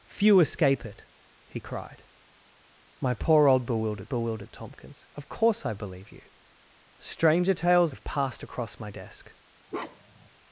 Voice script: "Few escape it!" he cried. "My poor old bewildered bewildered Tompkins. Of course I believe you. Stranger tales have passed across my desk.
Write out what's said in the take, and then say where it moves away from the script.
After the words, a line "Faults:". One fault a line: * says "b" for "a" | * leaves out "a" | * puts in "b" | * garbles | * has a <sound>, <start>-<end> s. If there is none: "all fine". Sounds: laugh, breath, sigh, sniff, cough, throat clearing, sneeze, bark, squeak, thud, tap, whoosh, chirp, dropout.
"Few escape it!" he cried. "My poor old bewildered bewildered Tompkins. Of course I believe you. Stranger tales have passed across my desk.
Faults:
* has a bark, 9.7-10.3 s